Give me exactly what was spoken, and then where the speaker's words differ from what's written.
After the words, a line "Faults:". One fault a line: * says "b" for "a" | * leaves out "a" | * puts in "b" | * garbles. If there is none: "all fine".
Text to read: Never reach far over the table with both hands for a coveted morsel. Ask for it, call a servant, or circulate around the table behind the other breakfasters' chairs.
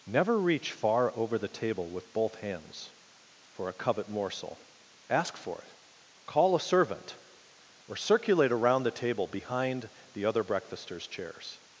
Never reach far over the table with both hands for a covet morsel. Ask for it, call a servant, or circulate around the table behind the other breakfasters' chairs.
Faults:
* says "covet" for "coveted"